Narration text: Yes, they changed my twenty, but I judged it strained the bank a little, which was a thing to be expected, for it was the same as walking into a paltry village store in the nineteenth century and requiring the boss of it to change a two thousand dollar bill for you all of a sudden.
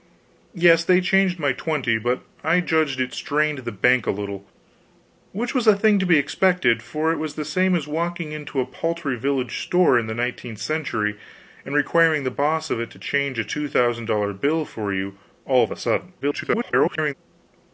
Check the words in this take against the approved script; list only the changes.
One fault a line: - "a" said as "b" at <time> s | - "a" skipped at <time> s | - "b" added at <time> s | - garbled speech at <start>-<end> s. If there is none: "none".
- garbled speech at 16.2-17.1 s